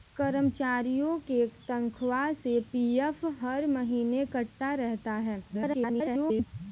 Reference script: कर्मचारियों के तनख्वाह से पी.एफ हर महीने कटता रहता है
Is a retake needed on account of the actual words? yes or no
yes